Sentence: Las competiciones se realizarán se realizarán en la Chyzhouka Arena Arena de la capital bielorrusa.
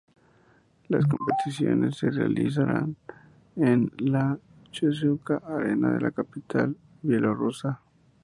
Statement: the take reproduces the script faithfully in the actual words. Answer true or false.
false